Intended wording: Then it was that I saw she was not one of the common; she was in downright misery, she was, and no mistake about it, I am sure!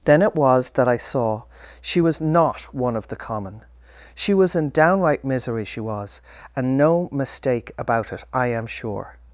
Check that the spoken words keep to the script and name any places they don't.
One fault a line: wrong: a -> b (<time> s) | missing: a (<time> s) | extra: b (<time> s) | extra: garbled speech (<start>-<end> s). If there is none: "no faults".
no faults